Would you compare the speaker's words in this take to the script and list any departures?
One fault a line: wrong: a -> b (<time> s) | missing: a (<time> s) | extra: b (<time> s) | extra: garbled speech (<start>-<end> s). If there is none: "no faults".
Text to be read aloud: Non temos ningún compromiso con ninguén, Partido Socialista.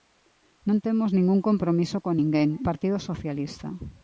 no faults